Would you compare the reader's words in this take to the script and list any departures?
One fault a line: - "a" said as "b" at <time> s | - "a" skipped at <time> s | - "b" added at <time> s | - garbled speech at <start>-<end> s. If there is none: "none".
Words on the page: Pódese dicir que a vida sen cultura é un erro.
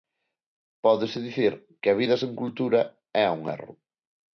none